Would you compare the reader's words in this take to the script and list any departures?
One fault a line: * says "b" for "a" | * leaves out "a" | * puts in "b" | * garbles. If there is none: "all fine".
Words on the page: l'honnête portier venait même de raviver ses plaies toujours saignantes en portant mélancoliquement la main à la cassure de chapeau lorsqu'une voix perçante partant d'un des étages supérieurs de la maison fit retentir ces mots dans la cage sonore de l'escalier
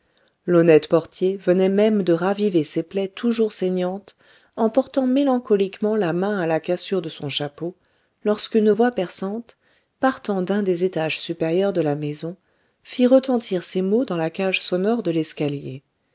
* puts in "son"